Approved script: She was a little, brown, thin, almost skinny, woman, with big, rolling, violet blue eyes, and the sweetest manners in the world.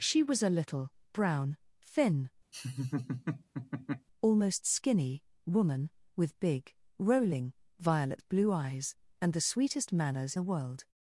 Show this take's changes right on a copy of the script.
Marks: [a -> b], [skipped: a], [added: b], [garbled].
She was a little, brown, thin, almost skinny, woman, with big, rolling, violet blue eyes, and the sweetest manners [skipped: in] the world.